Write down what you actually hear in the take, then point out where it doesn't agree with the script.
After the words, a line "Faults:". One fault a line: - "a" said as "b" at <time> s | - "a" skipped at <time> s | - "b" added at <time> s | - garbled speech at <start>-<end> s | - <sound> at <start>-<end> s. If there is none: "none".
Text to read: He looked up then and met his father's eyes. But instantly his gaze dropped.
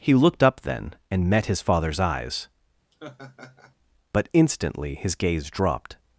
He looked up then and met his father's eyes. But instantly his gaze dropped.
Faults:
- laugh at 2.9-3.7 s